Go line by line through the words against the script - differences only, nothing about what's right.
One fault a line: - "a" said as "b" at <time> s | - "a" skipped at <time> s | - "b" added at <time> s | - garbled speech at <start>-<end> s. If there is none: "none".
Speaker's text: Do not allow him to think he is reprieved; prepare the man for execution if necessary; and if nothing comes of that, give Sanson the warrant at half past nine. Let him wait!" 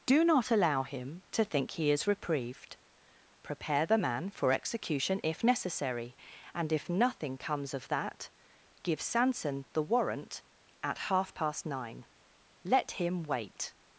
none